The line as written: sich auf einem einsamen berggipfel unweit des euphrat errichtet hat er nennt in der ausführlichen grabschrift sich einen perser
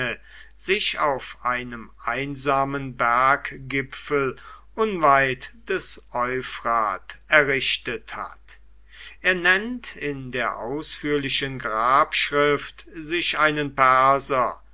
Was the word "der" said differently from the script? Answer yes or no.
no